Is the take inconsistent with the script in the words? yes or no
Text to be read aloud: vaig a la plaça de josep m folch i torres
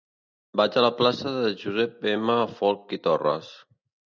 no